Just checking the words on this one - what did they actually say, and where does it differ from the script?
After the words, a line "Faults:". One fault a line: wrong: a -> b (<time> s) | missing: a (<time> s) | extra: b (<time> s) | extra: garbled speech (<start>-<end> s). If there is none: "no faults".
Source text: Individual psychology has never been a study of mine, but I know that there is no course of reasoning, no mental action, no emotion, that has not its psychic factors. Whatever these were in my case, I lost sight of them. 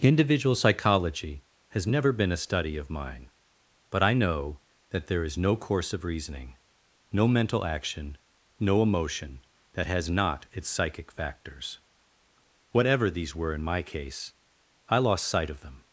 Individual psychology has never been a study of mine, but I know that there is no course of reasoning, no mental action, no emotion, that has not its psychic factors. Whatever these were in my case, I lost sight of them.
Faults:
no faults